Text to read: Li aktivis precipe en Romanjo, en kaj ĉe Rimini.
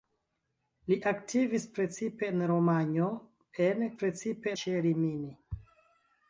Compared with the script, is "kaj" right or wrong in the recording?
wrong